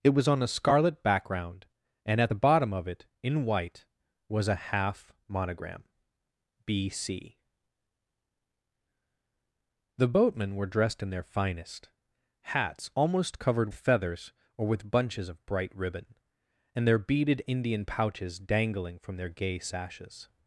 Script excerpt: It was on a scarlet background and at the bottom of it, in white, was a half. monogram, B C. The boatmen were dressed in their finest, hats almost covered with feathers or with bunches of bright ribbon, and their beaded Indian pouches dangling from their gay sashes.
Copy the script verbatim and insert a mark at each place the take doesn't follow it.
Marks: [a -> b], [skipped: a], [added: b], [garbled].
It was on a scarlet background and at the bottom of it, in white, was a half. monogram, B C. The boatmen were dressed in their finest, hats almost covered [skipped: with] feathers or with bunches of bright ribbon, and their beaded Indian pouches dangling from their gay sashes.